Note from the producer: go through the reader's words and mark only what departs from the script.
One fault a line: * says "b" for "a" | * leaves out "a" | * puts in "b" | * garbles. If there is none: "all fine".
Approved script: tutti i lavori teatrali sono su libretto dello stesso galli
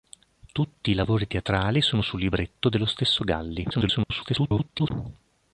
* garbles